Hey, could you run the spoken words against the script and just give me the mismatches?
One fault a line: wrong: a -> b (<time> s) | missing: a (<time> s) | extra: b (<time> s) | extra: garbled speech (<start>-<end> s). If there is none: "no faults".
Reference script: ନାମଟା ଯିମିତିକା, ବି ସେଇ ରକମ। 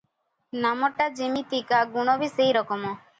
extra: ଗୁଣ (1.9 s)